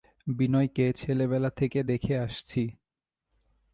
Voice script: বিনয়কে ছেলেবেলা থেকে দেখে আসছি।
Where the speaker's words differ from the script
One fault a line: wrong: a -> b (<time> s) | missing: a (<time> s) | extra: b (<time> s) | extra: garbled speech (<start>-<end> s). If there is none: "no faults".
no faults